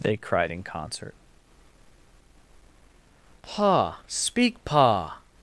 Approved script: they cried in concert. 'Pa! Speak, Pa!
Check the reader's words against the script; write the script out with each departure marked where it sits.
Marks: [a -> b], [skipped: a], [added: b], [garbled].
they cried in concert. 'Pa! Speak, Pa!